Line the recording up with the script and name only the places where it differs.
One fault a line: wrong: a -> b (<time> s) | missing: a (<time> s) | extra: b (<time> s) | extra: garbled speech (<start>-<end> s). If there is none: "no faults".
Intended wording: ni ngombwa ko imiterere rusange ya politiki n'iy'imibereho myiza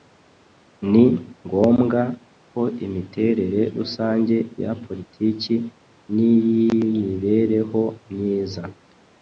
no faults